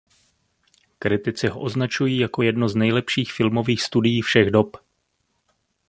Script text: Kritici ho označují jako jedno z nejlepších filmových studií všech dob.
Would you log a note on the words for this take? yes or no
no